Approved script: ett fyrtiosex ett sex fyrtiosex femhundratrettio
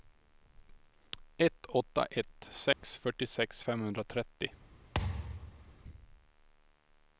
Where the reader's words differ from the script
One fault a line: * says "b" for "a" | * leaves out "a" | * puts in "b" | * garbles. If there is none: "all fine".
* says "åtta" for "fyrtiosex"